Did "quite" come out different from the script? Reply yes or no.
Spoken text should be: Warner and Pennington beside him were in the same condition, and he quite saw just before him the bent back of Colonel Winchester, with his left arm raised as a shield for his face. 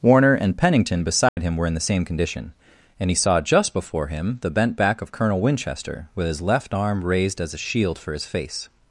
yes